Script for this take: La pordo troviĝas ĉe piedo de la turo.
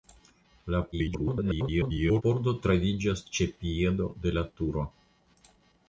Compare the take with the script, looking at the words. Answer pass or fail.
fail